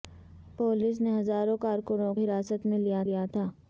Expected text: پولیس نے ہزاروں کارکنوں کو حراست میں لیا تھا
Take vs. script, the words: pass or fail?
fail